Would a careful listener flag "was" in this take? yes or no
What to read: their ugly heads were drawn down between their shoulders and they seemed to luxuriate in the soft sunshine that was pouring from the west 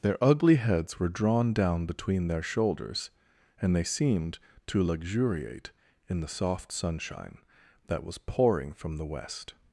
no